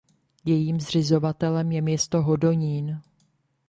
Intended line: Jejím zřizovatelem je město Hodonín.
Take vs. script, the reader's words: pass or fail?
pass